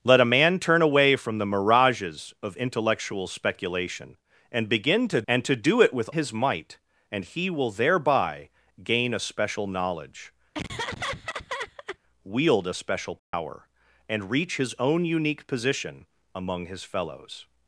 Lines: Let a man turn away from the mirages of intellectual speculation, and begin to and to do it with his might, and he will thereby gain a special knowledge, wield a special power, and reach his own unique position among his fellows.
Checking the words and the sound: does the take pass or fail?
fail